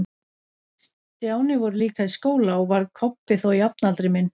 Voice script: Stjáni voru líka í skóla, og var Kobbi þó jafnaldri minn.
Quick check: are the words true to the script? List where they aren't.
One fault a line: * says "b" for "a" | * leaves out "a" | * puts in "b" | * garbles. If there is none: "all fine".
all fine